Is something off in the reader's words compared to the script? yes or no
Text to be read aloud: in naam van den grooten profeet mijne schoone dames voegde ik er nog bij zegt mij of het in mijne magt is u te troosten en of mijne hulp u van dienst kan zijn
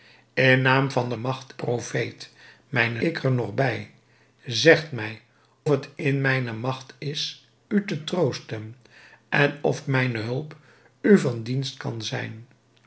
yes